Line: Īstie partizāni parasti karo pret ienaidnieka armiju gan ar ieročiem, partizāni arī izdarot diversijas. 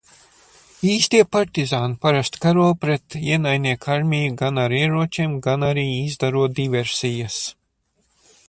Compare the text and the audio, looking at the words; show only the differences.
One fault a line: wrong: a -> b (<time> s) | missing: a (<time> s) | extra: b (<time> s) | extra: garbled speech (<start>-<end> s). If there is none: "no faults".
wrong: partizāni -> gan (5.5 s)